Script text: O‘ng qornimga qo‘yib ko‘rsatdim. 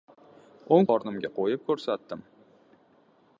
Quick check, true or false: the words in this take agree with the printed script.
true